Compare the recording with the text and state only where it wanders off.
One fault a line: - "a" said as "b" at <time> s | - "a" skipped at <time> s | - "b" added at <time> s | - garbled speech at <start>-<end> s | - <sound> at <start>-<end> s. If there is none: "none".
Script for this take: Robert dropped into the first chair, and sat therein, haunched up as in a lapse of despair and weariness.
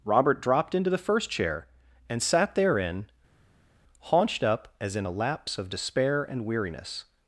none